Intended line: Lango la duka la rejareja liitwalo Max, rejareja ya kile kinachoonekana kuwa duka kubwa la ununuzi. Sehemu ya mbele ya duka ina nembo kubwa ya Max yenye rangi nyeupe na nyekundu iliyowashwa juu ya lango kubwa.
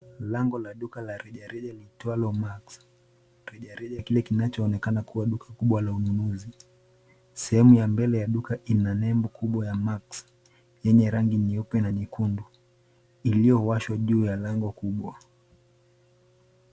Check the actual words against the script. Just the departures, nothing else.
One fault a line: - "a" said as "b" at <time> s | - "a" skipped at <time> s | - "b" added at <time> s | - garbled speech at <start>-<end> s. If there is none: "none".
none